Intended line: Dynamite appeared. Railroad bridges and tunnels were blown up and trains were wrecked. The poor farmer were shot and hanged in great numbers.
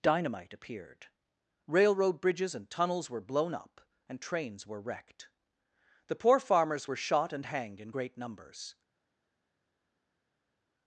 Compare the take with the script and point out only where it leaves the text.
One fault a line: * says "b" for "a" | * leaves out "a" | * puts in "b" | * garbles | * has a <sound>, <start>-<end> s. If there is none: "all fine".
* says "farmers" for "farmer"